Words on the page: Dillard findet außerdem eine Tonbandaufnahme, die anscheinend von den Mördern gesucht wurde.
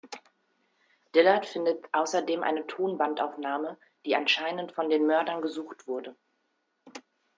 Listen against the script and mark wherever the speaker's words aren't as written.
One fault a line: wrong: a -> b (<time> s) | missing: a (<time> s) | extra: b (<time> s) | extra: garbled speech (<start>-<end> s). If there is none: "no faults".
no faults